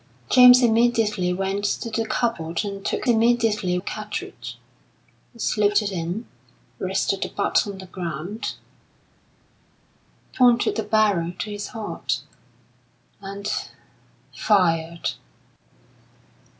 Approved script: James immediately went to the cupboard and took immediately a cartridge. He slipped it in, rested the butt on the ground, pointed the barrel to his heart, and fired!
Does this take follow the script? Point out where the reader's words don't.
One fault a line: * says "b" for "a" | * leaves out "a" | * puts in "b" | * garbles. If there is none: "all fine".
all fine